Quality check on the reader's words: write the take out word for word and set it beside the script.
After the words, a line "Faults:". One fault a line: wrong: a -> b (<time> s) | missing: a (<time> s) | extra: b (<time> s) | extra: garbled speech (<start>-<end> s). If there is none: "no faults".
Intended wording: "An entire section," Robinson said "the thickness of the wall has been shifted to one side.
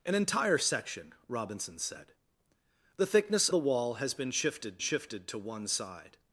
"An entire section," Robinson said "the thickness the wall has been shifted shifted to one side.
Faults:
missing: of (3.5 s)
extra: shifted (4.8 s)